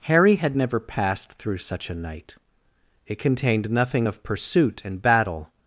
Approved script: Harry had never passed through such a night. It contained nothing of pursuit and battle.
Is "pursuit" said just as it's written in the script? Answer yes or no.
yes